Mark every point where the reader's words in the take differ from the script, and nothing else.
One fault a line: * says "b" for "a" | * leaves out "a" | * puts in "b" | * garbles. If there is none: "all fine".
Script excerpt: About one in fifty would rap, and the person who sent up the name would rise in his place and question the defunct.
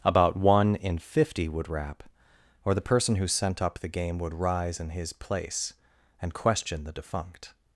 * says "or" for "and"
* says "game" for "name"